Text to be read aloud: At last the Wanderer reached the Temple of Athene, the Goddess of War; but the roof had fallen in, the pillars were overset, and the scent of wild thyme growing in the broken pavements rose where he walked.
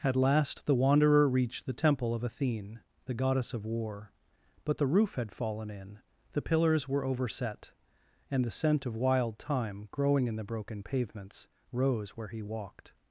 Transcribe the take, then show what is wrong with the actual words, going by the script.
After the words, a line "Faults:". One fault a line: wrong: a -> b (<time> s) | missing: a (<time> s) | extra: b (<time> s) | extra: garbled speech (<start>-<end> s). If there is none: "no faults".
At last the Wanderer reached the Temple of Athene, the Goddess of War; but the roof had fallen in, the pillars were overset, and the scent of wild thyme growing in the broken pavements rose where he walked.
Faults:
no faults